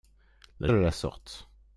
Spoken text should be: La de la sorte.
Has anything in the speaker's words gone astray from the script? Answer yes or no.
no